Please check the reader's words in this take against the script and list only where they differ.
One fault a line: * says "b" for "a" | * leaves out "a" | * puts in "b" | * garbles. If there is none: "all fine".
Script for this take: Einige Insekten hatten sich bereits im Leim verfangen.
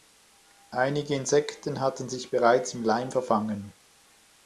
all fine